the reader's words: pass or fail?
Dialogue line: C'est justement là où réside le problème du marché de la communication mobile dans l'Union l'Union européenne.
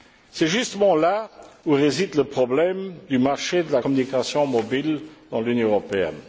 fail